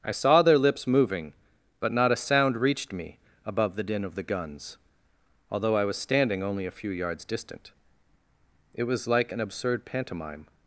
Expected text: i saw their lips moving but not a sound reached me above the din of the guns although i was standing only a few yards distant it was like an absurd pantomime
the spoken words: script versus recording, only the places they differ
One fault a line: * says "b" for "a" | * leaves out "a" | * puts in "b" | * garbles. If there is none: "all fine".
all fine